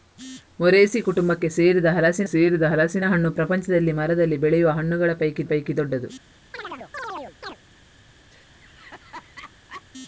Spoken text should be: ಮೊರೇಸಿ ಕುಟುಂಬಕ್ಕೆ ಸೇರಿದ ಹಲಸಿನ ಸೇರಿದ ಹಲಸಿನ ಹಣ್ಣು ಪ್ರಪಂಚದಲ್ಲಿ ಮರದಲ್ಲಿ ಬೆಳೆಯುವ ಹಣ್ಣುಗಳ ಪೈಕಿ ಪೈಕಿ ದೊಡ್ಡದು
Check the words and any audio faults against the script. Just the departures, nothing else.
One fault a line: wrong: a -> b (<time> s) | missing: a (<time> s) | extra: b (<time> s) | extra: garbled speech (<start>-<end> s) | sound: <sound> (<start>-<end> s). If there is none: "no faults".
sound: chirp (6.5-7.6 s)
sound: laugh (8.3-9.8 s)